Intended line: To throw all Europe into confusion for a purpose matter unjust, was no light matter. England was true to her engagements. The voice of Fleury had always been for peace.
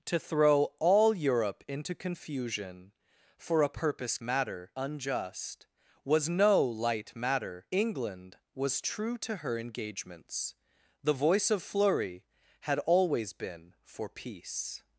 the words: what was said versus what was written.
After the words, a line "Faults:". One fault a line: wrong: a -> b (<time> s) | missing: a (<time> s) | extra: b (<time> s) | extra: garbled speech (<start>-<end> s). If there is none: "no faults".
To throw all Europe into confusion for a purpose matter unjust, was no light matter. England was true to her engagements. The voice of Fleury had always been for peace.
Faults:
no faults